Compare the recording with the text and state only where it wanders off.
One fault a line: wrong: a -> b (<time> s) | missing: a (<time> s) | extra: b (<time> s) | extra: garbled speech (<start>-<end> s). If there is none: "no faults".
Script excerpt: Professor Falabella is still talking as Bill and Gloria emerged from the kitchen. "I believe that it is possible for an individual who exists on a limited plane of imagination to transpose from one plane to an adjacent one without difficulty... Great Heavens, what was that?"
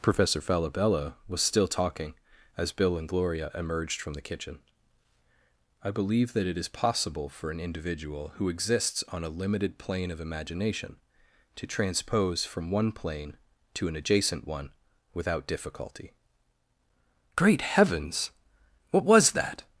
wrong: is -> was (1.3 s)